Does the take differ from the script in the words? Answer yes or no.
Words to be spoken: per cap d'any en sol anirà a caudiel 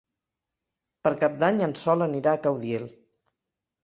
no